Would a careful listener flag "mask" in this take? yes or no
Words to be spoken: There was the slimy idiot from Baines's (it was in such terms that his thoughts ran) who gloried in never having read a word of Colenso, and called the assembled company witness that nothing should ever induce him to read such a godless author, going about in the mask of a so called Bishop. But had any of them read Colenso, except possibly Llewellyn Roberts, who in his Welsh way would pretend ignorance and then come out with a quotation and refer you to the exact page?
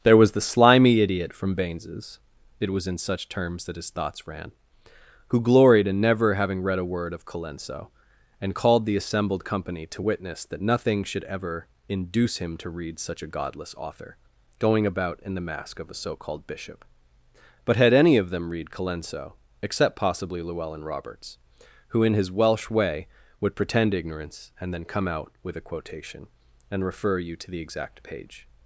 no